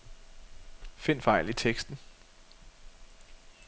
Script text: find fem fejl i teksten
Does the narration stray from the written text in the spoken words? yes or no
yes